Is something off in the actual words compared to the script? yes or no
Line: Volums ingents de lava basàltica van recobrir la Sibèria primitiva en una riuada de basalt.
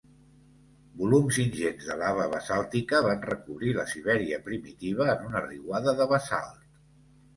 no